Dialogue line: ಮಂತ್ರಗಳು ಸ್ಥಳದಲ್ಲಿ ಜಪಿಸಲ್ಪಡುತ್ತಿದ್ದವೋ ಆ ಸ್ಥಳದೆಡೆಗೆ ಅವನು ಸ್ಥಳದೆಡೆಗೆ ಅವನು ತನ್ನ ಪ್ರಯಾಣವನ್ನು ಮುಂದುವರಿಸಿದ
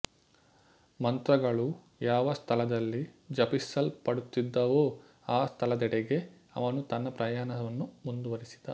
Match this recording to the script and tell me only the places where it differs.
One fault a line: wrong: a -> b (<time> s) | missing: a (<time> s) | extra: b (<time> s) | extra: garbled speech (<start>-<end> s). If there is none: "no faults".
extra: ಯಾವ (2.0 s)
missing: ಸ್ಥಳದೆಡೆಗೆ ಅವನು (6.8 s)